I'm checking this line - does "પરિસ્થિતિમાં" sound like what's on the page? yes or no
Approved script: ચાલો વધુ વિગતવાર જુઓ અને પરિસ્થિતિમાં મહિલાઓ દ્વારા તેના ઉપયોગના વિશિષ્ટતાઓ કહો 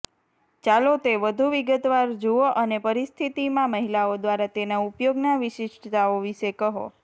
yes